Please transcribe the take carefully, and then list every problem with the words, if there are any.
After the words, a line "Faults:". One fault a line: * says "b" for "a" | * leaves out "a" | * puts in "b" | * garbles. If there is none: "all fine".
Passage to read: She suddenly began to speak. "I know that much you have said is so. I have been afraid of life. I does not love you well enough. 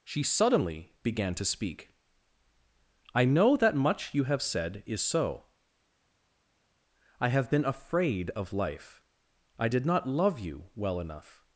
She suddenly began to speak. "I know that much you have said is so. I have been afraid of life. I did not love you well enough.
Faults:
* says "did" for "does"